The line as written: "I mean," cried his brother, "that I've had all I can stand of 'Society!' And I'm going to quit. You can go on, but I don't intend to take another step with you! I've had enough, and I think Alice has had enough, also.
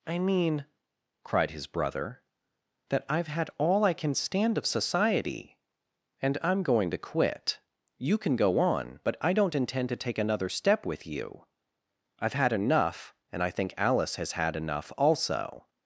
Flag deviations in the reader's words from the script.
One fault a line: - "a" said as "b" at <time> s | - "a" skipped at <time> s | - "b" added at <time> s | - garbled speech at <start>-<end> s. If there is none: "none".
none